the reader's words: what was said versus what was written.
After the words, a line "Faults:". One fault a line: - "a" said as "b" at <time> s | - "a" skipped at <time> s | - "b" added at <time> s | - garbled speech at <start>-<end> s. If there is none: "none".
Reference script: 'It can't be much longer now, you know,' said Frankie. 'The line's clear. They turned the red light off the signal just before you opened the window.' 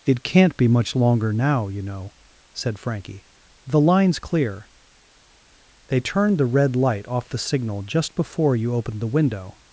'It can't be much longer now, you know,' said Frankie. 'The line's clear. They turned the red light off the signal just before you opened the window.'
Faults:
none